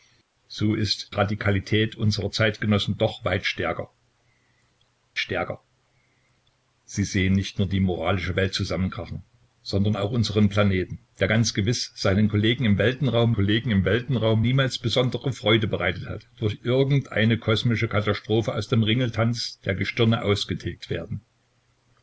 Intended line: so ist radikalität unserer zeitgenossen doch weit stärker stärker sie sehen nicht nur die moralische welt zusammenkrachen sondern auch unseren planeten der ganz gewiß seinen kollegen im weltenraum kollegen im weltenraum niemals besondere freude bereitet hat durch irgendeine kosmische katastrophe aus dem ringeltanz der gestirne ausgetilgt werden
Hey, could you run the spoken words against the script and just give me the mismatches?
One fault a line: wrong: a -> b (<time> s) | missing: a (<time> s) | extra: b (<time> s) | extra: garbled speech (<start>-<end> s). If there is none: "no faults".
no faults